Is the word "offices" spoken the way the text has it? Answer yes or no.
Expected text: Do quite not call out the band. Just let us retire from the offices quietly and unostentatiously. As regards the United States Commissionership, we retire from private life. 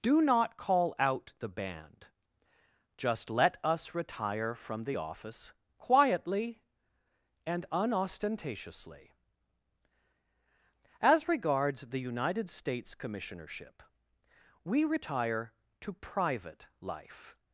no